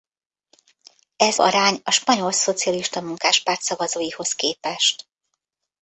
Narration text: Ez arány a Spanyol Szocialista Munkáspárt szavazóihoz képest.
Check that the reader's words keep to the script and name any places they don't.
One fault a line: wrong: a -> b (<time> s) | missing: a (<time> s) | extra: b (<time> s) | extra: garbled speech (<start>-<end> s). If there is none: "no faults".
no faults